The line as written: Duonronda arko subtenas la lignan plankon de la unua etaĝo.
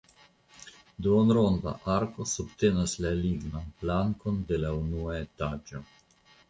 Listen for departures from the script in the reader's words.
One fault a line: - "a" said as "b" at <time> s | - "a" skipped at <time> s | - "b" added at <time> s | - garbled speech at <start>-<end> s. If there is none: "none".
none